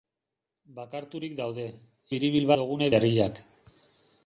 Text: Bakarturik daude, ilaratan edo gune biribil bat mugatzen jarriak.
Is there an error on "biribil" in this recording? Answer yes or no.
yes